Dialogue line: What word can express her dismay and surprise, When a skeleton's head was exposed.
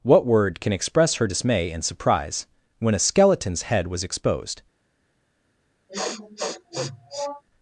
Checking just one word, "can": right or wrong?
right